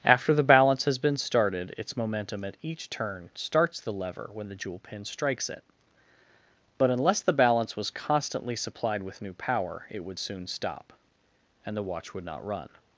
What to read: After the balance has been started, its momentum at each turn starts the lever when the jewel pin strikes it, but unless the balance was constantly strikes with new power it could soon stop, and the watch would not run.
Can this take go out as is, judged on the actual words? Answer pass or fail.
fail